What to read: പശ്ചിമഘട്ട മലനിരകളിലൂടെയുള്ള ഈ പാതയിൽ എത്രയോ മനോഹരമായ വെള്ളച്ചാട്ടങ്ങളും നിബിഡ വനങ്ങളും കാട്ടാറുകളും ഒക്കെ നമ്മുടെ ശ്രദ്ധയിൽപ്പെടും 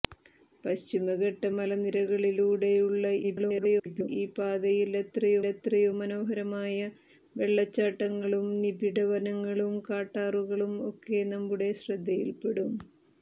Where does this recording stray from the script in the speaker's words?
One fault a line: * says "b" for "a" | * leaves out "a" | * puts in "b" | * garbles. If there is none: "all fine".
* garbles
* puts in "എത്രയോ"